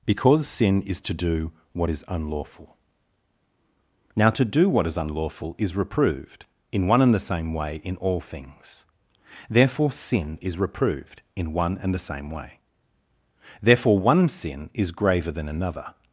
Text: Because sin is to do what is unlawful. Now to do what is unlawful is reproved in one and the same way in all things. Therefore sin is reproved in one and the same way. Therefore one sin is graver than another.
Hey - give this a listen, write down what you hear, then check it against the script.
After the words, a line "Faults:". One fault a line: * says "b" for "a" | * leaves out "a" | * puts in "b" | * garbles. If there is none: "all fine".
Because sin is to do what is unlawful. Now to do what is unlawful is reproved in one and the same way in all things. Therefore sin is reproved in one and the same way. Therefore one sin is graver than another.
Faults:
all fine